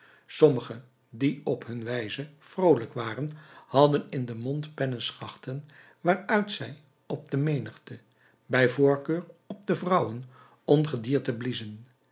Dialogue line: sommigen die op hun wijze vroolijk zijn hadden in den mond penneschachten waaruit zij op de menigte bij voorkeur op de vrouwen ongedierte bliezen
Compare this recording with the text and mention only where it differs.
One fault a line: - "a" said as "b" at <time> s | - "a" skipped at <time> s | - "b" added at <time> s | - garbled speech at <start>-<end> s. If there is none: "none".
- "zijn" said as "waren" at 2.9 s